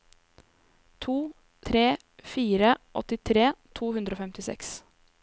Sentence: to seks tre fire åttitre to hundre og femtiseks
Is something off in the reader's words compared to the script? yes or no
yes